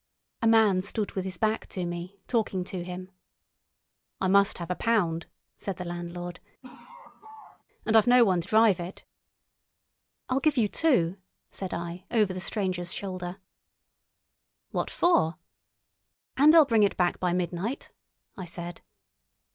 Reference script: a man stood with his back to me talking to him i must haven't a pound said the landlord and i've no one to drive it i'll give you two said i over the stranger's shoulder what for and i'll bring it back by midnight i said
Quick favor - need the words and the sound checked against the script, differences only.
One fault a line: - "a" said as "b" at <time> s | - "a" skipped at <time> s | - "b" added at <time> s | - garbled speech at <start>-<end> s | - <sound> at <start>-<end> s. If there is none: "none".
- "haven't" said as "have" at 4.6 s
- laugh at 6.6-7.6 s